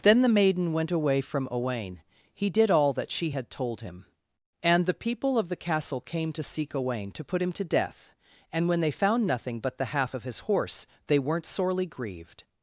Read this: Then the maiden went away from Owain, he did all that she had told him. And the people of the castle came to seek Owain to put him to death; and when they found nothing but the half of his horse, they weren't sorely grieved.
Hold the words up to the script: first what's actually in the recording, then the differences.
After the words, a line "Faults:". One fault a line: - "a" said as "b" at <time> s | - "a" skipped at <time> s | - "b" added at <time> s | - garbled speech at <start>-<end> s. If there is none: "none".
Then the maiden went away from Owain, he did all that she had told him. And the people of the castle came to seek Owain to put him to death; and when they found nothing but the half of his horse, they weren't sorely grieved.
Faults:
none